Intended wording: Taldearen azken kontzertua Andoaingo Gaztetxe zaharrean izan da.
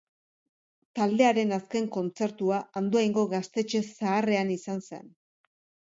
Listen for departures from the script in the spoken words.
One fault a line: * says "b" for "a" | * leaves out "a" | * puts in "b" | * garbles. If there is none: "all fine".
* says "zen" for "da"